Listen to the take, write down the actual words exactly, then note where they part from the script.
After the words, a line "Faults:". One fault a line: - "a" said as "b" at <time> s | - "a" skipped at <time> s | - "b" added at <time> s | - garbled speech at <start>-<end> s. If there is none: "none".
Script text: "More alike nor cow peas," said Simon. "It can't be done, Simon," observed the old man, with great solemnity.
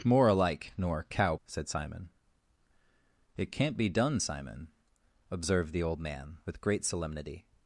"More alike nor cow," said Simon. "It can't be done, Simon," observed the old man, with great solemnity.
Faults:
- "peas" skipped at 1.4 s